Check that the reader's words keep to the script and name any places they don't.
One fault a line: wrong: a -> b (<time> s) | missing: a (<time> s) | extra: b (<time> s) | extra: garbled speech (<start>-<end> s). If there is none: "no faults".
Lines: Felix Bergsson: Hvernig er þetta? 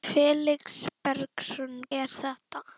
missing: Hvernig (1.8 s)